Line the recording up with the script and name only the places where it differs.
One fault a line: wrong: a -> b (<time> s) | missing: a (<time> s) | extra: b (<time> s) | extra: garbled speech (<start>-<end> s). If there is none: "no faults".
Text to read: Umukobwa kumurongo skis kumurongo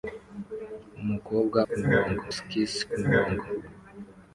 no faults